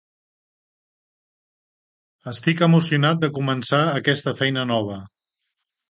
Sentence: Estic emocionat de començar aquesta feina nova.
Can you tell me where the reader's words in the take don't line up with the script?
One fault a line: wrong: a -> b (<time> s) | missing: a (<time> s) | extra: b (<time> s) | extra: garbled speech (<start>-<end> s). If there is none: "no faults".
no faults